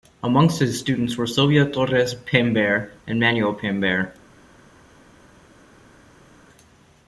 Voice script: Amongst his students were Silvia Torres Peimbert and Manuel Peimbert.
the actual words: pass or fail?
pass